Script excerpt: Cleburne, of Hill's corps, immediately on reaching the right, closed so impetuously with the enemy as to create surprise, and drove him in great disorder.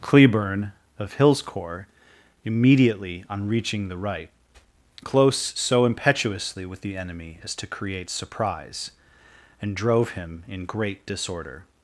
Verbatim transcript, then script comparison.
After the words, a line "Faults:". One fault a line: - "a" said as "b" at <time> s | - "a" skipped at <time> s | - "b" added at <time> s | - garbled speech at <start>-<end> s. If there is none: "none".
Cleburne, of Hill's corps, immediately on reaching the right, close so impetuously with the enemy as to create surprise, and drove him in great disorder.
Faults:
- "closed" said as "close" at 5.0 s